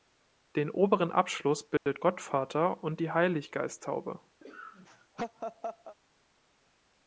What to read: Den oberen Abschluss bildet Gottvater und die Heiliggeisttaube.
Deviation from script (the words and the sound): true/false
true